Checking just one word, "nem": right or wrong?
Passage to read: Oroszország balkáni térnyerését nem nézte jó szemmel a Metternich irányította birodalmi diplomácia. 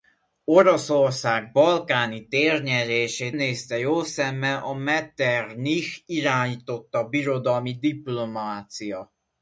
wrong